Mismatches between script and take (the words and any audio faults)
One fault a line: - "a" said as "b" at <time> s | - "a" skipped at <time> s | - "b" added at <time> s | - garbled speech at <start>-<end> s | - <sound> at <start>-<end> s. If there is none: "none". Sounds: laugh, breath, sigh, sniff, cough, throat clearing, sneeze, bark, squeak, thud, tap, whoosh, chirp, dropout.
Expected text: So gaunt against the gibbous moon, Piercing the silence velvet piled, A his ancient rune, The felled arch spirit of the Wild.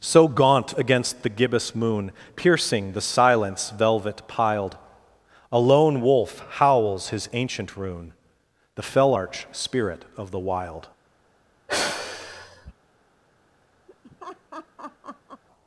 - "lone wolf howls" added at 5.6 s
- "felled" said as "fell" at 8.8 s
- sigh at 11.7-12.7 s
- laugh at 13.9-15.4 s